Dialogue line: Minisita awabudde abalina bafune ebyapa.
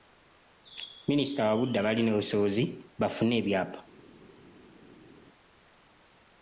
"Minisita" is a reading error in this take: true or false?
false